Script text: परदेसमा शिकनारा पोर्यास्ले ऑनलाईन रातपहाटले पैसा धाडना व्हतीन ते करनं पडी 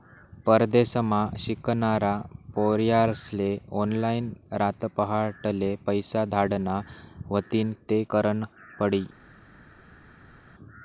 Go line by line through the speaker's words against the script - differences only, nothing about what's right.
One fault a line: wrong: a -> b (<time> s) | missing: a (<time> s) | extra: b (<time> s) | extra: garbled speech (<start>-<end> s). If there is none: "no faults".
no faults